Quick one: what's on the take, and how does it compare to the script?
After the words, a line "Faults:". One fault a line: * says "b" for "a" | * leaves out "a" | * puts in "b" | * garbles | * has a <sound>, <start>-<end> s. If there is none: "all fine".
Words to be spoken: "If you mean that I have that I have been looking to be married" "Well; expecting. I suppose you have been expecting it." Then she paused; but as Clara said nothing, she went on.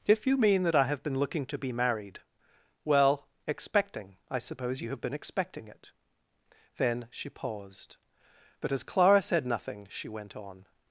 "If you mean that I have been looking to be married" "Well; expecting. I suppose you have been expecting it." Then she paused; but as Clara said nothing, she went on.
Faults:
* leaves out "that I have"